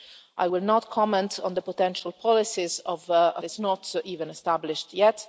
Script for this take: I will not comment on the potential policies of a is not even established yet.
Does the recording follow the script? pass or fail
pass